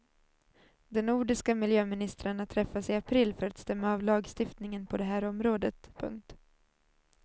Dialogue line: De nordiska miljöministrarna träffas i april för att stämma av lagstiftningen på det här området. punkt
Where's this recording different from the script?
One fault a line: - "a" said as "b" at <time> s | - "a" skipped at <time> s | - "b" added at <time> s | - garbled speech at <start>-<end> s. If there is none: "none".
none